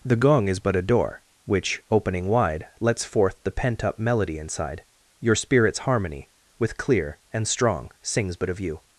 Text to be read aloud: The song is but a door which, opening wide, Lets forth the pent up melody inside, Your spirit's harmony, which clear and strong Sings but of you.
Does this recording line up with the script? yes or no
no